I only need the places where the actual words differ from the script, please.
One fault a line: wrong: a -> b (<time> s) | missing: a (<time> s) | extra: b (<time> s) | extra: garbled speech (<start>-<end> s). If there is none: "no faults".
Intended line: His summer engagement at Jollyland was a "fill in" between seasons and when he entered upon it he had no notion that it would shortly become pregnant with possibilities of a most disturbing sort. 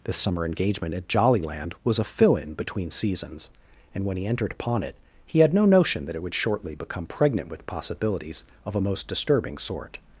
wrong: His -> This (0.0 s)